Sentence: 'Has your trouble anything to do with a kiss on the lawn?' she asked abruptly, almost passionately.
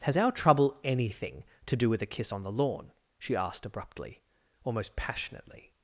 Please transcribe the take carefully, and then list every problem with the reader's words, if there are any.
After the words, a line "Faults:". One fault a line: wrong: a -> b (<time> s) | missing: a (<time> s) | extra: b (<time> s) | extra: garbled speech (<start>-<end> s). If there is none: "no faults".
'Has our trouble anything to do with a kiss on the lawn?' she asked abruptly, almost passionately.
Faults:
wrong: your -> our (0.2 s)